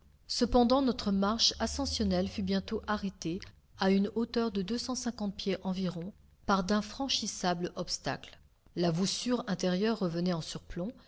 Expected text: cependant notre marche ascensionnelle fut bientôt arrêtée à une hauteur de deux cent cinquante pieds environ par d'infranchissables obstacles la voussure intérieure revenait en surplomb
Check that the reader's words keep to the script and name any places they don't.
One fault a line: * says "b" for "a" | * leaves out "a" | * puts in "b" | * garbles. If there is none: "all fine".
all fine